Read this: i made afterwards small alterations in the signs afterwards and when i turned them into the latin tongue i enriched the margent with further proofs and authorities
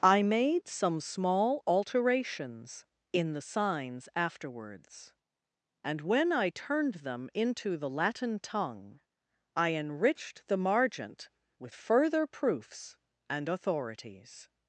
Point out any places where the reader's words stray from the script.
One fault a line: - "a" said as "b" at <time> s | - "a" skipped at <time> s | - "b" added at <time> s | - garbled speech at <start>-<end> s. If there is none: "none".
- "afterwards" said as "some" at 0.7 s